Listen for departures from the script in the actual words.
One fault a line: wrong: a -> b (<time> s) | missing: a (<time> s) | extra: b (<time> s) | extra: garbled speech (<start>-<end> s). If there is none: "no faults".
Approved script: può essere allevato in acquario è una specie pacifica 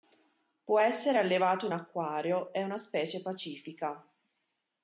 no faults